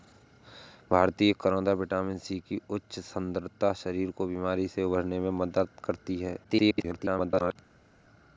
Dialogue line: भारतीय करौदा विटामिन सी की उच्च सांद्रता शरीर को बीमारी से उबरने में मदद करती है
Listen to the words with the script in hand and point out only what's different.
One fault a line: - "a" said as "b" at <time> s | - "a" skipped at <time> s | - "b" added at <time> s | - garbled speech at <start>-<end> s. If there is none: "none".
- garbled speech at 6.4-7.6 s